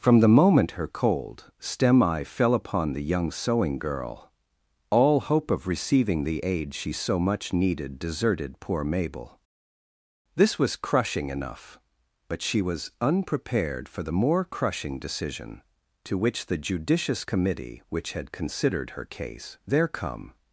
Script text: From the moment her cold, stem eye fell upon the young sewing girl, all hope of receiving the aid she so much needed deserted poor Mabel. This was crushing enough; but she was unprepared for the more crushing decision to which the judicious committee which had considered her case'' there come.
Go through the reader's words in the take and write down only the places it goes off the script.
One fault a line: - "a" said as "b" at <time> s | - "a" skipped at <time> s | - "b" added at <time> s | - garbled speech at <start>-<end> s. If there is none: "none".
none